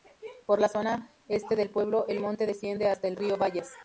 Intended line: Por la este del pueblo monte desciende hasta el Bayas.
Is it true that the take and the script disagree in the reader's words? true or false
true